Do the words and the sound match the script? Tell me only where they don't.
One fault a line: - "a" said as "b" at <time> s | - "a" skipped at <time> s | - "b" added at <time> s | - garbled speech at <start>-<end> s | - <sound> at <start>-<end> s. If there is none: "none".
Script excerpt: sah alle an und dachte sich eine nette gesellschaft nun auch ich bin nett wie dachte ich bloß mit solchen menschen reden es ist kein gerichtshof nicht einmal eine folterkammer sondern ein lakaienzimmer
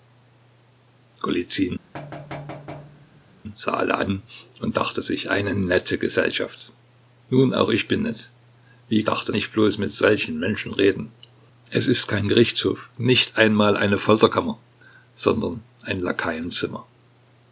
- thud at 1.9-3.3 s